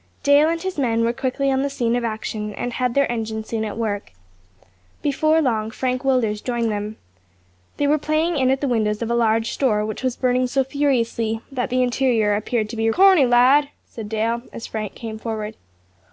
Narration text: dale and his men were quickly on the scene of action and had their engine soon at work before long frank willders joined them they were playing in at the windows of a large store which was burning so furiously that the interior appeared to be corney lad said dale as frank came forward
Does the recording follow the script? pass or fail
pass